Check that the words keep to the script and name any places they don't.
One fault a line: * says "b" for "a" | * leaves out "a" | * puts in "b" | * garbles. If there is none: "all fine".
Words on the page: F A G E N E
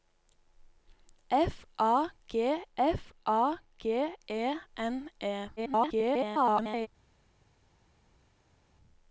* puts in "f A G"
* garbles